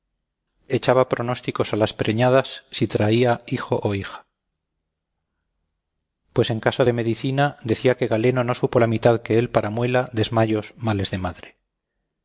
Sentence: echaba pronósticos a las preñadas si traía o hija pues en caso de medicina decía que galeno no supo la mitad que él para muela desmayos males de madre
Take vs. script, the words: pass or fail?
fail